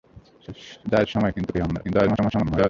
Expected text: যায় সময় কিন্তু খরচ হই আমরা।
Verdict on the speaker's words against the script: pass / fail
fail